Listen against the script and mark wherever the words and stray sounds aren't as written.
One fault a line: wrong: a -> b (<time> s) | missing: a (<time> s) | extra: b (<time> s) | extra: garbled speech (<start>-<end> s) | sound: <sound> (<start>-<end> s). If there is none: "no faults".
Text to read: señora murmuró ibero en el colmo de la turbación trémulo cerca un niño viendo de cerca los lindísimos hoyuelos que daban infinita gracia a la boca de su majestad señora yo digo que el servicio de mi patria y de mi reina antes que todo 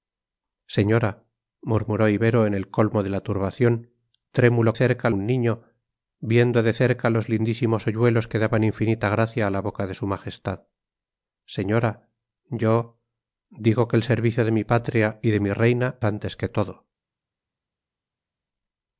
no faults